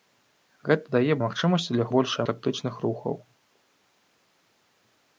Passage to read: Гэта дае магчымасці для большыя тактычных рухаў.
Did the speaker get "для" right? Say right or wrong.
right